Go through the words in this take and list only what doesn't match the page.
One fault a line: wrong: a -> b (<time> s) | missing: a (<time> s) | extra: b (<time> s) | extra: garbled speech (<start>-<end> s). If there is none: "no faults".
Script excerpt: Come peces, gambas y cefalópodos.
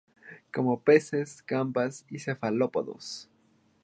no faults